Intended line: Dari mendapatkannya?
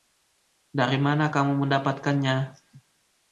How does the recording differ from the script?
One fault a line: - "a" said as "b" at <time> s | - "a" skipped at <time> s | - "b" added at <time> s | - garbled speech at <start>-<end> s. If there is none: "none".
- "mana kamu" added at 1.0 s